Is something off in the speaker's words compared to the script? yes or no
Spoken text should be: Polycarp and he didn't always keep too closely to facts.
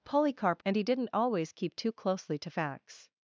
no